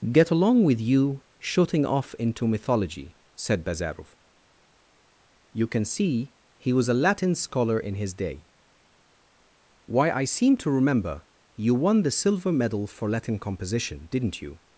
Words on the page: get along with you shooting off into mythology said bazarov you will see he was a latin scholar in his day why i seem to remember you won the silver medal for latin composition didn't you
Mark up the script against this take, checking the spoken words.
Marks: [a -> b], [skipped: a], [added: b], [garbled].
get along with you shooting off into mythology said bazarov you [will -> can] see he was a latin scholar in his day why i seem to remember you won the silver medal for latin composition didn't you